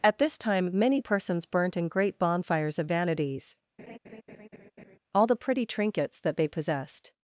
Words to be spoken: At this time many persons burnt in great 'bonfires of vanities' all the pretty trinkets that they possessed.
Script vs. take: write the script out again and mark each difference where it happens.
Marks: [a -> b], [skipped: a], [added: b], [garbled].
At this time many persons burnt in great 'bonfires of vanities' all the pretty trinkets that they possessed.